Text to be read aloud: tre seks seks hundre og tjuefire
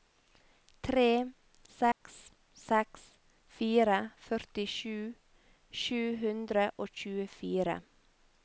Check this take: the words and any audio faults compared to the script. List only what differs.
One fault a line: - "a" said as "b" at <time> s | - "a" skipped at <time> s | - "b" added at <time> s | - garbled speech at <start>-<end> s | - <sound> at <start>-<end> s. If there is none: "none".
- dropout at 1.9-2.0 s
- "fire førtisju sju" added at 3.6 s